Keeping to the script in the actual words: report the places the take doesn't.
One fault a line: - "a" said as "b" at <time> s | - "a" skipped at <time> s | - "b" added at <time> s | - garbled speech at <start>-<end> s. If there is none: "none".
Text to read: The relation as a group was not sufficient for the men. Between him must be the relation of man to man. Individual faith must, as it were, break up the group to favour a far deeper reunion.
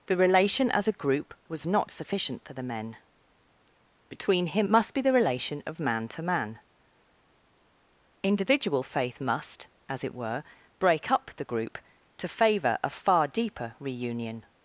none